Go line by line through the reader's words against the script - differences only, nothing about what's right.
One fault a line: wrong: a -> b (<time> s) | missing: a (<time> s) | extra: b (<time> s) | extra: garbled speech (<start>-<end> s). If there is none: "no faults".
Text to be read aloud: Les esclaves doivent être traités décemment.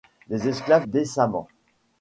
missing: doivent être traités (0.9 s)